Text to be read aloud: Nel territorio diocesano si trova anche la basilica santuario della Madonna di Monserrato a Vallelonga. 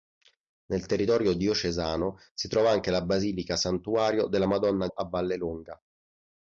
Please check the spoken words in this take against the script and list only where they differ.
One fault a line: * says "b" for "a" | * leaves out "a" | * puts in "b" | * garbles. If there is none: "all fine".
* leaves out "di Monserrato"